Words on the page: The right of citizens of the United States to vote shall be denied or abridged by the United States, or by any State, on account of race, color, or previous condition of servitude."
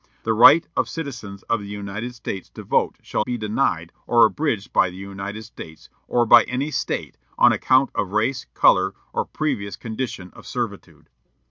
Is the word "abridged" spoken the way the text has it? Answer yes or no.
yes